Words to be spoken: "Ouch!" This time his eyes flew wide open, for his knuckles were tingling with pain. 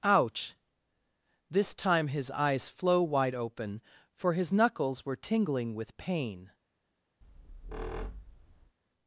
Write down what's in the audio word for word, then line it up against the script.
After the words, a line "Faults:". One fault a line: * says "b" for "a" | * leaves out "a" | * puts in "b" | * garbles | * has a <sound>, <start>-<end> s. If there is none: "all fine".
"Ouch!" This time his eyes flow wide open, for his knuckles were tingling with pain.
Faults:
* says "flow" for "flew"
* has a squeak, 7.2-8.7 s